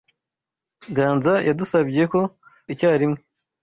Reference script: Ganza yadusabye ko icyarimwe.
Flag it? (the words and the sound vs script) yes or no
no